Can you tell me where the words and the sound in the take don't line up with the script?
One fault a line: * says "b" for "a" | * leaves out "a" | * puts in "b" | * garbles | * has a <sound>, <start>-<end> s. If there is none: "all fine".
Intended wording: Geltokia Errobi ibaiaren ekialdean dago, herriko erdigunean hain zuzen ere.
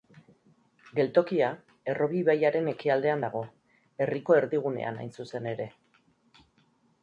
all fine